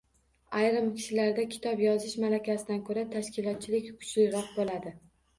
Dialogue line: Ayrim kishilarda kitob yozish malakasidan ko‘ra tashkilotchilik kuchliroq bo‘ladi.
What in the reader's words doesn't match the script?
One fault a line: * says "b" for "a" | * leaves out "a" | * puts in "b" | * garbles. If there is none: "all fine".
all fine